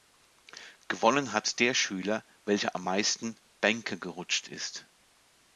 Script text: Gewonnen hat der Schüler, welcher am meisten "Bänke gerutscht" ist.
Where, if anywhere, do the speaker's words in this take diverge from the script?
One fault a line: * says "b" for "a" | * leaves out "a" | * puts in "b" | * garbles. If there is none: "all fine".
all fine